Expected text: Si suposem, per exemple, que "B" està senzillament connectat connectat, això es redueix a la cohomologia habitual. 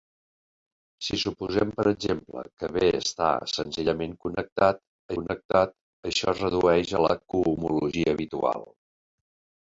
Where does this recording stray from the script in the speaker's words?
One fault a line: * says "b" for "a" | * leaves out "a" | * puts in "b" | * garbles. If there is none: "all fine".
all fine